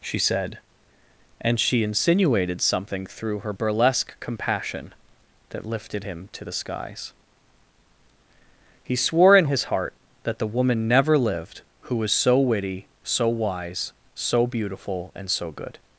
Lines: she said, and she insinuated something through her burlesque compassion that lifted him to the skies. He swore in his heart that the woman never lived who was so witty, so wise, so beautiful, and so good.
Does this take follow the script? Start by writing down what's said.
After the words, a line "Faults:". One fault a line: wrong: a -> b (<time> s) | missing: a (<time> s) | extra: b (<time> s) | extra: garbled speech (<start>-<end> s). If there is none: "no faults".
she said, and she insinuated something through her burlesque compassion that lifted him to the skies. He swore in his heart that the woman never lived who was so witty, so wise, so beautiful, and so good.
Faults:
no faults